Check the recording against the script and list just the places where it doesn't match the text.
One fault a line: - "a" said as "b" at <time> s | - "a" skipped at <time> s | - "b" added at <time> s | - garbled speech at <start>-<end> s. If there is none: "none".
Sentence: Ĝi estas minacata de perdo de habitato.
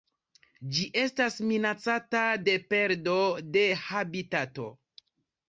none